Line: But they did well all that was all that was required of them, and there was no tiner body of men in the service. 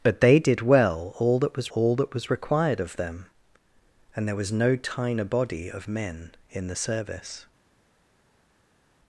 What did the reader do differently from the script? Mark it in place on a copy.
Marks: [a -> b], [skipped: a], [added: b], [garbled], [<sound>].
But they did well all that was all that was required of them, and there was no tiner body of men in the service.